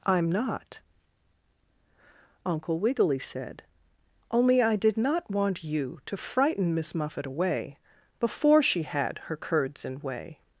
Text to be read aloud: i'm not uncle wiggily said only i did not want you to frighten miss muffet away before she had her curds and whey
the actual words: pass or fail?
pass